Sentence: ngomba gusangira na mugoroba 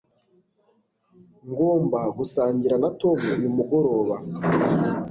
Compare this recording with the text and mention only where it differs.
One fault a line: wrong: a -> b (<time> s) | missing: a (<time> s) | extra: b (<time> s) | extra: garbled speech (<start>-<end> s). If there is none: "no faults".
extra: tom uyu (3.0 s)